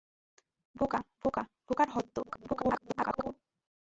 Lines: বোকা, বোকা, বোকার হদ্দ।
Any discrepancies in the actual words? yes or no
yes